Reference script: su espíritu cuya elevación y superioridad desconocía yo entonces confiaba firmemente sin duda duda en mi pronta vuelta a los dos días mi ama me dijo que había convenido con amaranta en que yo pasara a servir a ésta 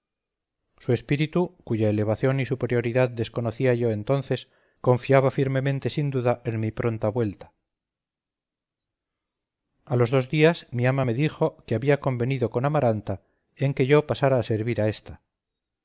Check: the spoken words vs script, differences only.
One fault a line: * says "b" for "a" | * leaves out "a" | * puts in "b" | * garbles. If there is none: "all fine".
* leaves out "duda"